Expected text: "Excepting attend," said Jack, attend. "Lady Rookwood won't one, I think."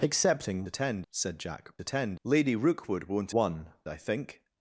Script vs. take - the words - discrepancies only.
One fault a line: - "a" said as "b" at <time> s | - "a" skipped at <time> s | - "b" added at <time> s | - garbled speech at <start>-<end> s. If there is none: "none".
none